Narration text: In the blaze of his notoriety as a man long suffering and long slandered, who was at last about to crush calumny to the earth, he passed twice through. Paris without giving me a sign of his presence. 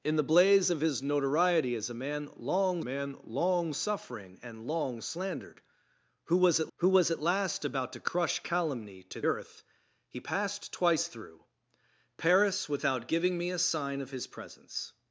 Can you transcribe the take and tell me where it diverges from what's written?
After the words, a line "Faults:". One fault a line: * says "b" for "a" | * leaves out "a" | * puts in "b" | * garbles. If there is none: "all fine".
In the blaze of his notoriety as a man long man long suffering and long slandered, who was at who was at last about to crush calumny to earth, he passed twice through. Paris without giving me a sign of his presence.
Faults:
* puts in "man long"
* puts in "who was at"
* leaves out "the"